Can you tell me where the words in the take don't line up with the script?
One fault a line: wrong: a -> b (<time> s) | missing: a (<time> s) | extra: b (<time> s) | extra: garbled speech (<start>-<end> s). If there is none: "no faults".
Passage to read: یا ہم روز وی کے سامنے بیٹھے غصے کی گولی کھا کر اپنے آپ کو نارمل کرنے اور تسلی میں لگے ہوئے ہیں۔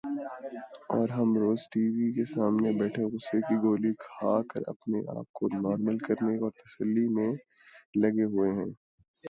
wrong: یا -> اور (0.9 s)
extra: ٹی (1.7 s)